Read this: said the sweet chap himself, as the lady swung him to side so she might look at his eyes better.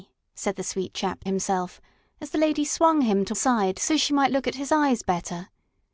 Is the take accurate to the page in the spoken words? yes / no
yes